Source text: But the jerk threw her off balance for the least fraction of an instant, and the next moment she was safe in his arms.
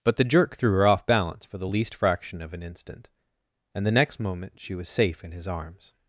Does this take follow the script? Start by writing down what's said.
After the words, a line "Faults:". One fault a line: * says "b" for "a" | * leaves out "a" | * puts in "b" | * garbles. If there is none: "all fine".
But the jerk threw her off balance for the least fraction of an instant, and the next moment she was safe in his arms.
Faults:
all fine